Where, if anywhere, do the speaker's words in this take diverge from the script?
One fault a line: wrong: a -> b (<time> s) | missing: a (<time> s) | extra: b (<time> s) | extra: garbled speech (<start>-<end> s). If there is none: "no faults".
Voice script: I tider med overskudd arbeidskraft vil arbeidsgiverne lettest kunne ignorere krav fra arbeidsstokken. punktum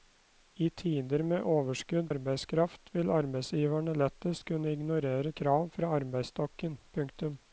no faults